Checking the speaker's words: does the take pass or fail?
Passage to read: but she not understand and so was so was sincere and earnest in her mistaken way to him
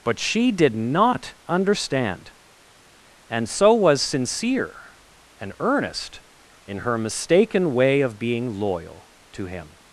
fail